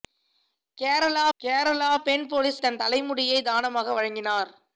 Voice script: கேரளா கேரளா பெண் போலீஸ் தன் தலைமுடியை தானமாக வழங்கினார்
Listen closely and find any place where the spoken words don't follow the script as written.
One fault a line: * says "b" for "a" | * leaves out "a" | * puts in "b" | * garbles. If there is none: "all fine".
all fine